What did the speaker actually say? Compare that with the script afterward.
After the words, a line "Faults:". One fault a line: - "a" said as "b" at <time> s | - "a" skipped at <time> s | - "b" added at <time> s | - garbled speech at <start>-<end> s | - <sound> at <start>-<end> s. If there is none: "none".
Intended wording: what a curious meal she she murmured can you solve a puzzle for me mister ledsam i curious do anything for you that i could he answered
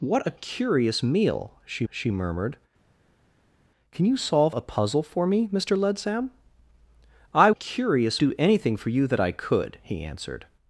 what a curious meal she she murmured can you solve a puzzle for me mister ledsam i curious do anything for you that i could he answered
Faults:
none